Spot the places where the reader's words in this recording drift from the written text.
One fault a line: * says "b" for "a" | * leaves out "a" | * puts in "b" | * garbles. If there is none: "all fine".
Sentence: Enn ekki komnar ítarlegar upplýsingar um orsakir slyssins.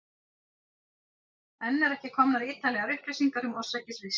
* puts in "eru"